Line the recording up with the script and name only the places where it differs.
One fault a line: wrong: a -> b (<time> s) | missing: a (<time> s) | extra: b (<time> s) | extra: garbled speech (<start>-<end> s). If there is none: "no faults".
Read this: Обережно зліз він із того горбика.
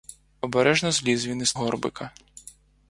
missing: того (1.5 s)